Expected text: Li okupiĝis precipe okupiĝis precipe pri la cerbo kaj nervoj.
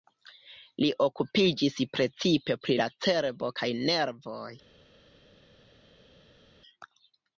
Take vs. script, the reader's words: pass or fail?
fail